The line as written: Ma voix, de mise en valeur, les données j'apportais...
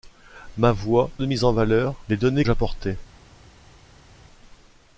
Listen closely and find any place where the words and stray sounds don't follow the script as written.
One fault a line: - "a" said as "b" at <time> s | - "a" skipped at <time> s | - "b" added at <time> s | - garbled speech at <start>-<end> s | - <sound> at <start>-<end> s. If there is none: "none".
none